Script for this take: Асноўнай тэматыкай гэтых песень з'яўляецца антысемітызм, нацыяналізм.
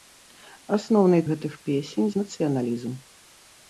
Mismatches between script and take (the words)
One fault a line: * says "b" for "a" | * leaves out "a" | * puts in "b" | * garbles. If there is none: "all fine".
* leaves out "тэматыкай"
* leaves out "з'яўляецца антысемітызм"